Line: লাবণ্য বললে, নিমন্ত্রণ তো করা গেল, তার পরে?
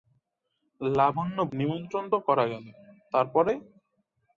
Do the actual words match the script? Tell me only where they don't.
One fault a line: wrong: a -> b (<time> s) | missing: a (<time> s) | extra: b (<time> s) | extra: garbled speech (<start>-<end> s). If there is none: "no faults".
missing: বললে (1.4 s)